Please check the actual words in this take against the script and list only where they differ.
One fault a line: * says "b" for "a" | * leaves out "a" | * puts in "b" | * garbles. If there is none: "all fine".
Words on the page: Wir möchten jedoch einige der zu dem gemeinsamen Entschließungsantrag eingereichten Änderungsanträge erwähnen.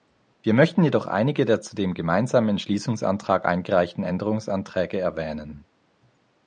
all fine